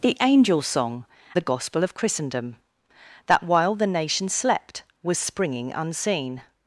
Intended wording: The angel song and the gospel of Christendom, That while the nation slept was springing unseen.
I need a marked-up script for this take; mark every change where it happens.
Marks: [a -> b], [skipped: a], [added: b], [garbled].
The angel song [skipped: and] the gospel of Christendom, That while the nation slept was springing unseen.